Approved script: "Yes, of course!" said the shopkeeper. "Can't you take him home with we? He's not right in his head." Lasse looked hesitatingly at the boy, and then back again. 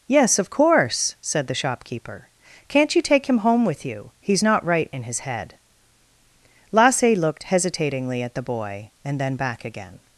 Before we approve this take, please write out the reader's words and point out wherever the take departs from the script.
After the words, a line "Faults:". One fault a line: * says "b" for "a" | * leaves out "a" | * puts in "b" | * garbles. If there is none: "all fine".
"Yes, of course!" said the shopkeeper. "Can't you take him home with you? He's not right in his head." Lasse looked hesitatingly at the boy, and then back again.
Faults:
* says "you" for "we"